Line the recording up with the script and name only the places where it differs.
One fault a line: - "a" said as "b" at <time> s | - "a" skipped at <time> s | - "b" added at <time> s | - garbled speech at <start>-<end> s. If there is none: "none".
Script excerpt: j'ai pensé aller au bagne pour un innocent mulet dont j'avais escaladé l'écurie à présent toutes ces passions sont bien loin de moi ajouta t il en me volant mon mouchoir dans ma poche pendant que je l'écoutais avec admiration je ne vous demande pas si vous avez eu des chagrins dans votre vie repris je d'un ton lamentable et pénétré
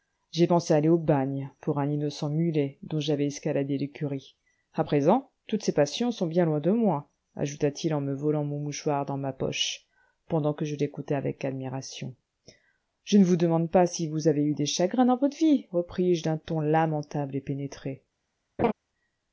none